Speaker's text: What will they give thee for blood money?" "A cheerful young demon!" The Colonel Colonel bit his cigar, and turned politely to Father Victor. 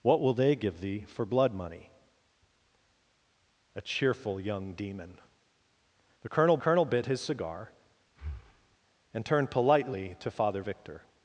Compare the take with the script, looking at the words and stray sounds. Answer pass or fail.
fail